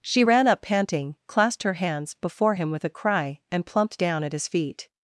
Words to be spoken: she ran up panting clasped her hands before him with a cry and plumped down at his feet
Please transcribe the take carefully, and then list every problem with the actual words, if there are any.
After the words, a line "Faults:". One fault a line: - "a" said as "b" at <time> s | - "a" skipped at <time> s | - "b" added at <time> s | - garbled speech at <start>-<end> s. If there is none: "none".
she ran up panting clasped her hands before him with a cry and plumped down at his feet
Faults:
none